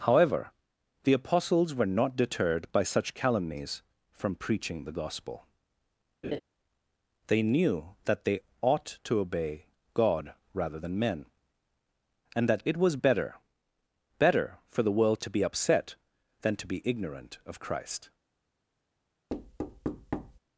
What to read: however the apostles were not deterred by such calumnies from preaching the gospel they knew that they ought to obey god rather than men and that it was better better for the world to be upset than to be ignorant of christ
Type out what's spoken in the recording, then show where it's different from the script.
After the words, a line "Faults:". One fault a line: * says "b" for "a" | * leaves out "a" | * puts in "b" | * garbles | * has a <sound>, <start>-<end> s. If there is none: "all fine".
however the apostles were not deterred by such calumnies from preaching the gospel they knew that they ought to obey god rather than men and that it was better better for the world to be upset than to be ignorant of christ
Faults:
* has a laugh, 6.2-6.4 s
* has a thud, 19.3-20.4 s